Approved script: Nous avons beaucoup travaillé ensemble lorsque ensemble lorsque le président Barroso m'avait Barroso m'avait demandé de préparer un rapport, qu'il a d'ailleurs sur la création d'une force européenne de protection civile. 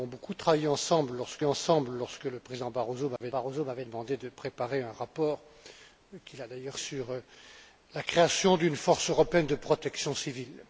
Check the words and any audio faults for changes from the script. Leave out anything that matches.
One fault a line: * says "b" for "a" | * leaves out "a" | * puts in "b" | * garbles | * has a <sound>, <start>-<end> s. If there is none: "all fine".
* has a dropout, 3.2-3.2 s